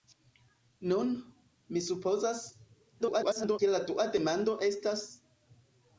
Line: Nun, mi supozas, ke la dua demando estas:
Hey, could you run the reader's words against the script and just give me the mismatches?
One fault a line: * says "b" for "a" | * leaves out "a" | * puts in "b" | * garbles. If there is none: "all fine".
* garbles